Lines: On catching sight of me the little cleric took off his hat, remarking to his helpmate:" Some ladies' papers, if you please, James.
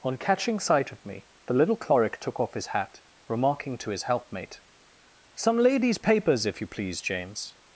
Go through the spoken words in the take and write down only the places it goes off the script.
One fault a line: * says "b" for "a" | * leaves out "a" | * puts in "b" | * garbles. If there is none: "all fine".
all fine